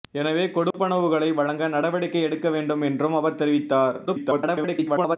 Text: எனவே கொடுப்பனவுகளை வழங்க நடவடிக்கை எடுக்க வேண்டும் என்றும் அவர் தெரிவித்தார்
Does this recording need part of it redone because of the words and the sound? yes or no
yes